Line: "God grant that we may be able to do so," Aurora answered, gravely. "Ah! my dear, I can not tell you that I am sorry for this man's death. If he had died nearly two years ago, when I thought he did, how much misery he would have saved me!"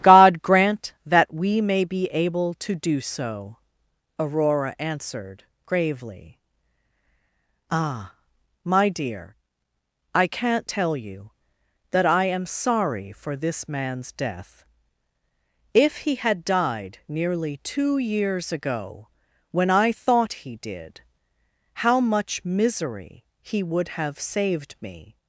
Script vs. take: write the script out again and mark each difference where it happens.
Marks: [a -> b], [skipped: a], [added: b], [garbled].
"God grant that we may be able to do so," Aurora answered, gravely. "Ah! my dear, I can not tell you that I am sorry for this man's death. If he had died nearly two years ago, when I thought he did, how much misery he would have saved me!"